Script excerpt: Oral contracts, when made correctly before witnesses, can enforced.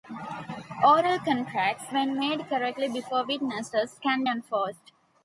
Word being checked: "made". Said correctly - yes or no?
yes